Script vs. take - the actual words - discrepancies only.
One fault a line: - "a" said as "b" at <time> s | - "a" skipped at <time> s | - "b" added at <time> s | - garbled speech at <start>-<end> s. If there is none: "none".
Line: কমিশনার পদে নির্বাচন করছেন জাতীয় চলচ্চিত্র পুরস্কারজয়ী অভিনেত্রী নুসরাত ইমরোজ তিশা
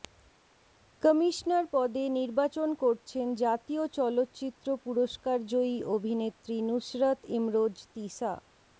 none